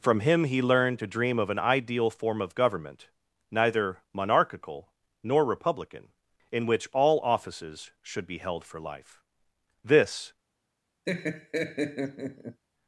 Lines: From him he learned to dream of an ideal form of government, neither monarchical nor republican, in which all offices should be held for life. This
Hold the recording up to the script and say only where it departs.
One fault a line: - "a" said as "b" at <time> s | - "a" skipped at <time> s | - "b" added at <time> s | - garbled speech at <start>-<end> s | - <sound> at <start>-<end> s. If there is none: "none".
- laugh at 11.1-12.6 s